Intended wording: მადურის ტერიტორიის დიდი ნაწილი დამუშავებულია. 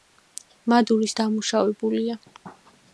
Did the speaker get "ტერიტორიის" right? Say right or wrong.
wrong